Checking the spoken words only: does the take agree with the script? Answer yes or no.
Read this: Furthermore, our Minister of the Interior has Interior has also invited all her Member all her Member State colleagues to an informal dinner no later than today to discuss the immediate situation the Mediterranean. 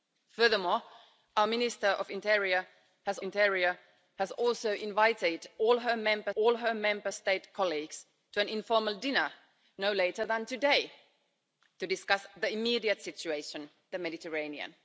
yes